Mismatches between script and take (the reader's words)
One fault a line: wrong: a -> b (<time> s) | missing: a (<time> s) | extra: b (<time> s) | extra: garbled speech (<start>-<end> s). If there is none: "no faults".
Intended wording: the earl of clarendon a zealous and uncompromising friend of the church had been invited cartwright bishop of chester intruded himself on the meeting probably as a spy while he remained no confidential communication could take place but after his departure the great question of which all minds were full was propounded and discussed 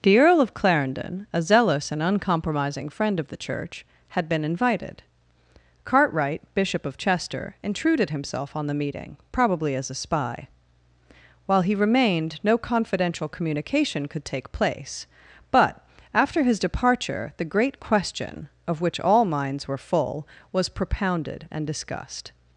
no faults